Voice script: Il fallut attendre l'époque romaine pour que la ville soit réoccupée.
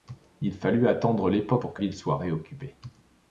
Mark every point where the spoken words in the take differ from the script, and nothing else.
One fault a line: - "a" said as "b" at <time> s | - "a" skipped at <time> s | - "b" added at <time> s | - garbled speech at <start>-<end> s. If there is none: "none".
- "romaine" skipped at 1.6 s
- "la" skipped at 1.8 s